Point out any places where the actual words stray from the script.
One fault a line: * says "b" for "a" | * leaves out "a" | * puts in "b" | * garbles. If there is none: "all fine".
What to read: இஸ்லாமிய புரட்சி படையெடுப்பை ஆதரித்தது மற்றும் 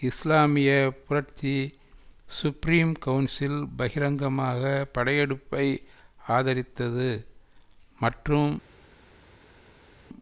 * puts in "சுப்ரீம் கவுன்சில் பகிரங்கமாக"